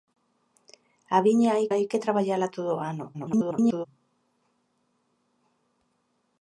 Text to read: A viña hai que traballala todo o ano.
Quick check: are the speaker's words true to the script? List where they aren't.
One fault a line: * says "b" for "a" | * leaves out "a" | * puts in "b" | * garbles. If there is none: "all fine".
* puts in "hai"
* garbles